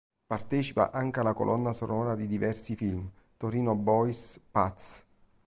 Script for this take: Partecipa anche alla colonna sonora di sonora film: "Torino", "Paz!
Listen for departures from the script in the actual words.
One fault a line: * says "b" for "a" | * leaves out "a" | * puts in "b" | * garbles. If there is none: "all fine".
* says "diversi" for "sonora"
* puts in "Boys"